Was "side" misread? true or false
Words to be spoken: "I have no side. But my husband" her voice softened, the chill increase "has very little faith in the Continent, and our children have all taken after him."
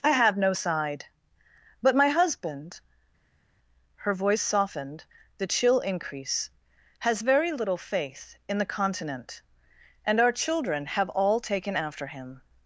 false